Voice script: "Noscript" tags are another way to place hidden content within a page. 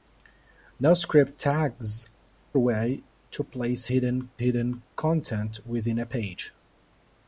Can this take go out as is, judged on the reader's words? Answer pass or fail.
fail